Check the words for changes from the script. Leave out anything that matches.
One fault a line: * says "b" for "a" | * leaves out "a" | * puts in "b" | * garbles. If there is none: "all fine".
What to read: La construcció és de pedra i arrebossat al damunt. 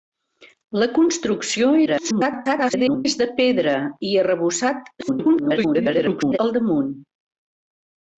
* garbles
* garbles